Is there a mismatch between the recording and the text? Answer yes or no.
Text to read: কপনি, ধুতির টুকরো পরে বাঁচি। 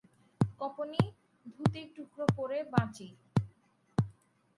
no